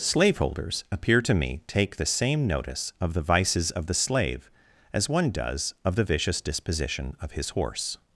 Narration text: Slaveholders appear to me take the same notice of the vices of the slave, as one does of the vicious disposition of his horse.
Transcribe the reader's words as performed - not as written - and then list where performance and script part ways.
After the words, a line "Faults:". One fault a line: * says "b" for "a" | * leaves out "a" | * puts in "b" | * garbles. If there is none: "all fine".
Slaveholders appear to me take the same notice of the vices of the slave, as one does of the vicious disposition of his horse.
Faults:
all fine